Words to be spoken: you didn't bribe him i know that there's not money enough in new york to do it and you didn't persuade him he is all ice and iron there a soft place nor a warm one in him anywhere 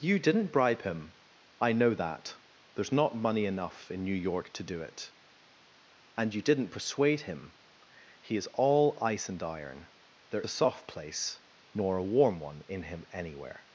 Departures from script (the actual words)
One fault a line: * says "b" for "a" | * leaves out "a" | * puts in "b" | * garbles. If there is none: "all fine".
all fine